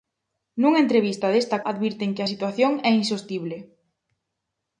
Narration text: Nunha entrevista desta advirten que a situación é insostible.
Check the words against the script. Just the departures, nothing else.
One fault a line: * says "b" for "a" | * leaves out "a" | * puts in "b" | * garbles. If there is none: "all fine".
all fine